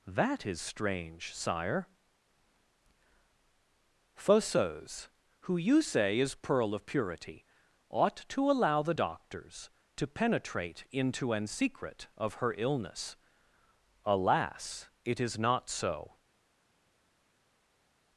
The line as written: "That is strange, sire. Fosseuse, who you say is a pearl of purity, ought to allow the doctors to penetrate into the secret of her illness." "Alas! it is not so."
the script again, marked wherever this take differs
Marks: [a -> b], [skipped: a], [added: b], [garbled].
"That is strange, sire. Fosseuse, who you say is [skipped: a] pearl of purity, ought to allow the doctors to penetrate into [the -> an] secret of her illness." "Alas! it is not so."